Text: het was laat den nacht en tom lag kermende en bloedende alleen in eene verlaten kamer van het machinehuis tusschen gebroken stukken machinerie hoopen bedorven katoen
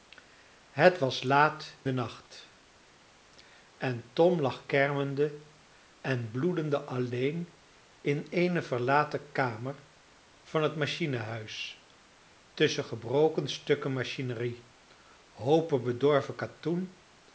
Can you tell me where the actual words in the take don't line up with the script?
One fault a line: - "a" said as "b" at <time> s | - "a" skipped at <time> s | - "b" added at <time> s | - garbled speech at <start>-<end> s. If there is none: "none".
none